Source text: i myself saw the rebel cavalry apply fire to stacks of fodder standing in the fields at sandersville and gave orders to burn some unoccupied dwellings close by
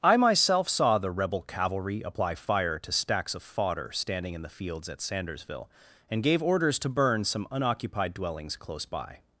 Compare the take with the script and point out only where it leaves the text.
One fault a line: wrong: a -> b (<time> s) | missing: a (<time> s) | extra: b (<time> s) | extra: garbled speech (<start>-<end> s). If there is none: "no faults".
no faults